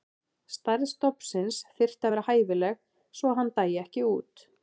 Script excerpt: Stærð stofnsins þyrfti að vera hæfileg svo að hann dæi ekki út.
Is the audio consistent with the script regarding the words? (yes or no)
yes